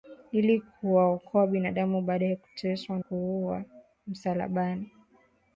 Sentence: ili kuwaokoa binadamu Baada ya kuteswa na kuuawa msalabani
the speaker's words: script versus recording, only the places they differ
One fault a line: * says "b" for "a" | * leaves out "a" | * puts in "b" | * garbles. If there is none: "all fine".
* leaves out "na"